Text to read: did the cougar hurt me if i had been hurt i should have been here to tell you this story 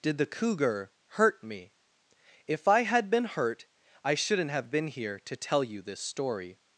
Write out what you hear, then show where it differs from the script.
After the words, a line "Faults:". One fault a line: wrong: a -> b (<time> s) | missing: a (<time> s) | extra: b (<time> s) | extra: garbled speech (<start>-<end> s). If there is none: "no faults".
did the cougar hurt me if i had been hurt i shouldn't have been here to tell you this story
Faults:
wrong: should -> shouldn't (4.1 s)